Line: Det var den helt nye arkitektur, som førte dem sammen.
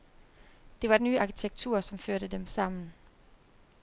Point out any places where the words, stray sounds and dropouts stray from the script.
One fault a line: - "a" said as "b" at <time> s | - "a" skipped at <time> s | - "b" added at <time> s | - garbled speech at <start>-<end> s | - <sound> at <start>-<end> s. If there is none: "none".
- "den helt" skipped at 1.0 s